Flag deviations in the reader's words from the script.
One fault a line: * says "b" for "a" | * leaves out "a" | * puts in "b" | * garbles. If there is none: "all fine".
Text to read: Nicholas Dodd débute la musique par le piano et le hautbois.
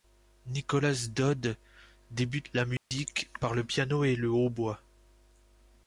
all fine